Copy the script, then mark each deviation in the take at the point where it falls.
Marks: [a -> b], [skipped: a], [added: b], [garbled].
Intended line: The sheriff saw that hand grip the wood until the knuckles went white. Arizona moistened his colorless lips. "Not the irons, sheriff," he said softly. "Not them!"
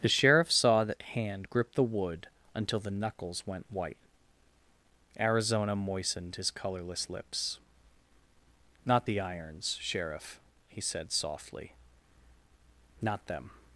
The sheriff saw that hand grip the wood until the knuckles went white. Arizona moistened his colorless lips. "Not the irons, sheriff," he said softly. "Not them!"